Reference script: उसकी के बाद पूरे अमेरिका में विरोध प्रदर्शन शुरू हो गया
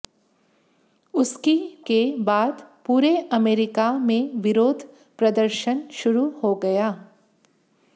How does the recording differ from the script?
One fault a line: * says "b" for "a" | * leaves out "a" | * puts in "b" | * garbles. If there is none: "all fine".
all fine